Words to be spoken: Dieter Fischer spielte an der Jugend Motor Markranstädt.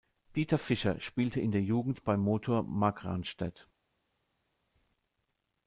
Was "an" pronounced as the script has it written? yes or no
no